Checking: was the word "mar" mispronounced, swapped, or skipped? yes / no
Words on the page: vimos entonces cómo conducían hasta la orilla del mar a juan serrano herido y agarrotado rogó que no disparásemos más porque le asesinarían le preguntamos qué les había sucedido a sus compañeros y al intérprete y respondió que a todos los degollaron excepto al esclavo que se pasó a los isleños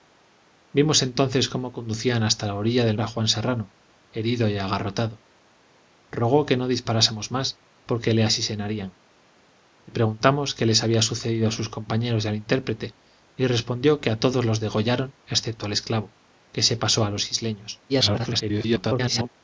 yes